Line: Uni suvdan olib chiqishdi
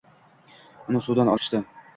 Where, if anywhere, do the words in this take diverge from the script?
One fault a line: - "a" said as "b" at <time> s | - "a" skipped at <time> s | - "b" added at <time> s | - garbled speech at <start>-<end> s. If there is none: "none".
- "olib" skipped at 1.3 s